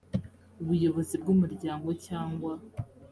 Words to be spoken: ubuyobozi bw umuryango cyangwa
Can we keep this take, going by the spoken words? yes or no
yes